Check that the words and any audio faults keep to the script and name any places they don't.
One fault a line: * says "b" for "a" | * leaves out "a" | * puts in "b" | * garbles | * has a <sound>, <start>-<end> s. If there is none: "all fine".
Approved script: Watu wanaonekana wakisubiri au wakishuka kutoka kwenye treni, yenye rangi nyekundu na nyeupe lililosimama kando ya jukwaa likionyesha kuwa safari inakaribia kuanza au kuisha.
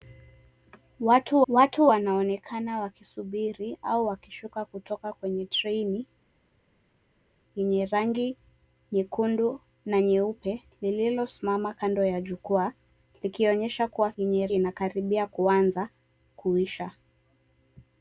* puts in "watu"
* says "yenye" for "safari"
* leaves out "au"